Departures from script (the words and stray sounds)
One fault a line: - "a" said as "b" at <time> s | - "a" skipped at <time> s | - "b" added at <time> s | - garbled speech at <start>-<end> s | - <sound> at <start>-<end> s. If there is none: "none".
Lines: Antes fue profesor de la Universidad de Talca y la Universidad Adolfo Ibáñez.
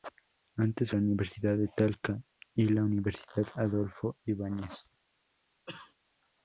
- "fue profesor de" skipped at 0.9 s
- cough at 5.7-5.9 s